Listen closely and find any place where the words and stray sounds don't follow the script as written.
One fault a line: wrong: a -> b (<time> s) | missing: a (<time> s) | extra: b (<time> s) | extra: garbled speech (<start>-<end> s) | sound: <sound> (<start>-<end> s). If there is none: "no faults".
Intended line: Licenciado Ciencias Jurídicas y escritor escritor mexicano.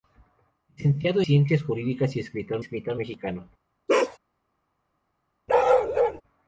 sound: bark (3.9-4.2 s)
sound: bark (5.5-6.2 s)